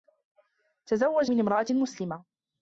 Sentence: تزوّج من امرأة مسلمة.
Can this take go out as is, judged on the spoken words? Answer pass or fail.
pass